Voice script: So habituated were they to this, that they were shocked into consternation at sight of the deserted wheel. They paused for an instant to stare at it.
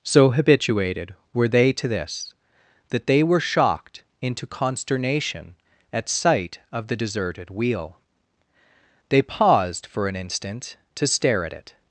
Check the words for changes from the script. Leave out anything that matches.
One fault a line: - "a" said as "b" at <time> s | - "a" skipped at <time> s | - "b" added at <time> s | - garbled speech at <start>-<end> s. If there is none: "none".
none